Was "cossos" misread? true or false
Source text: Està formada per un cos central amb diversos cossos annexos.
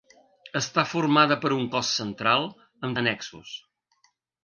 true